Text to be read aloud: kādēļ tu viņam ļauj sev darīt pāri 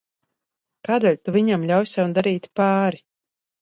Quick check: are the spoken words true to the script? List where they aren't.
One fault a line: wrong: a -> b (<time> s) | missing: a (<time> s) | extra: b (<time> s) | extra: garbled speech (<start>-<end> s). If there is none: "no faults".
no faults